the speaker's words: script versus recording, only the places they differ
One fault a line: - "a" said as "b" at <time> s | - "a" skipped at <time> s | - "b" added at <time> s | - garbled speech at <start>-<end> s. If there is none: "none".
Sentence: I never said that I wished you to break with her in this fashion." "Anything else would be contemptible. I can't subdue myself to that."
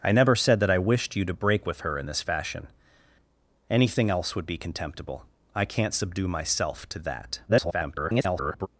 - garbled speech at 7.5-8.7 s